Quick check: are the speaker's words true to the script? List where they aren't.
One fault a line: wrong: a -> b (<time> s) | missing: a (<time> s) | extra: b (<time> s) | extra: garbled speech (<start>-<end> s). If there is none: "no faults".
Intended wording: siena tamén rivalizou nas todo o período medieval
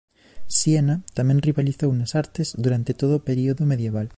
extra: artes durante (2.2 s)